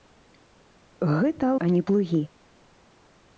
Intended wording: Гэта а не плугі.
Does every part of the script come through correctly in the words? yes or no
yes